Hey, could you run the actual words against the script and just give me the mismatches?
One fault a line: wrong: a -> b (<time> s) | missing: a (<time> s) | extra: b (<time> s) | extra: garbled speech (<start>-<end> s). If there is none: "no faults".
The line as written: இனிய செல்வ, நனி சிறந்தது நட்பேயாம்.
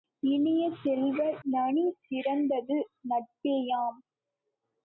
no faults